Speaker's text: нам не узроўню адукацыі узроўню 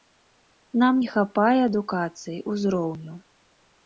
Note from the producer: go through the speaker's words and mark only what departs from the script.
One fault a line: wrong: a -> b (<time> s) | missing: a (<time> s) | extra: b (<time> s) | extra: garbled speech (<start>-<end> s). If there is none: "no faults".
wrong: узроўню -> хапае (1.1 s)